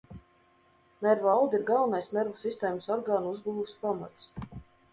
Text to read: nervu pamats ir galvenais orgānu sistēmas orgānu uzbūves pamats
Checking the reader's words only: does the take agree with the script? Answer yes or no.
no